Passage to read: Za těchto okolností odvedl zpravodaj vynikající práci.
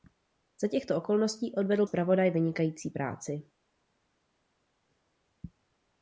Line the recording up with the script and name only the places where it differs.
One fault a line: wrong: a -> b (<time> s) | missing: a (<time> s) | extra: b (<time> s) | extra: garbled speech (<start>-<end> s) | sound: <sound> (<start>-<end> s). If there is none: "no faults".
no faults